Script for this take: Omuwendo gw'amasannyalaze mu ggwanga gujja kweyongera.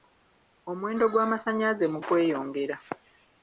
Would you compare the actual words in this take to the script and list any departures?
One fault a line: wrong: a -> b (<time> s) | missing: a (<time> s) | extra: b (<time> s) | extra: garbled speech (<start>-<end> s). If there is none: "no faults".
missing: ggwanga gujja (2.0 s)